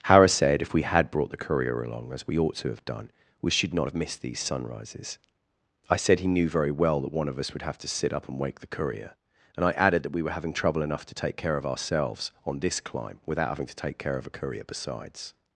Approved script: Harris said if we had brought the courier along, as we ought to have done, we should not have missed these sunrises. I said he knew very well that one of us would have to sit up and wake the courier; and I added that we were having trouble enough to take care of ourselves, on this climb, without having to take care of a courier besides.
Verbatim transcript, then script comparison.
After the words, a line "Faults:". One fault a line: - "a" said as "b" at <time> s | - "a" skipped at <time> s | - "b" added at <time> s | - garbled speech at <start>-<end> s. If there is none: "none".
Harris said if we had brought the courier along, as we ought to have done, we should not have missed these sunrises. I said he knew very well that one of us would have to sit up and wake the courier; and I added that we were having trouble enough to take care of ourselves, on this climb, without having to take care of a courier besides.
Faults:
none